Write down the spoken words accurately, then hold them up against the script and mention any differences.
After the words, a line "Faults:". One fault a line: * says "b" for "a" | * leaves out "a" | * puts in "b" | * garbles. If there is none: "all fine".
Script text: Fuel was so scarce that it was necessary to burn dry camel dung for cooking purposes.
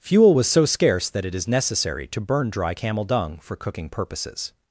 Fuel was so scarce that it is necessary to burn dry camel dung for cooking purposes.
Faults:
* says "is" for "was"